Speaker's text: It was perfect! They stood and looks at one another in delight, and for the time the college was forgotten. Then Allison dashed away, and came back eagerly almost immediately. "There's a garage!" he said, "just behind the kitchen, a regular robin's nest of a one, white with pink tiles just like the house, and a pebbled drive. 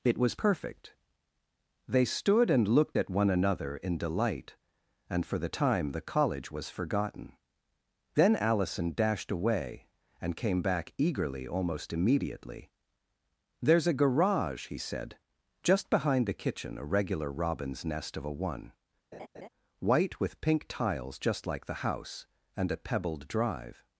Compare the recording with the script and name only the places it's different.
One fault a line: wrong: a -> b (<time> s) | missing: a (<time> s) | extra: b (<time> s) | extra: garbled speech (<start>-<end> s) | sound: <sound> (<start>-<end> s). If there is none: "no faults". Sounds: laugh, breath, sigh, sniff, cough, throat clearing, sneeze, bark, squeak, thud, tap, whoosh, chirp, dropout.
wrong: looks -> looked (2.7 s)
sound: laugh (19.1-19.5 s)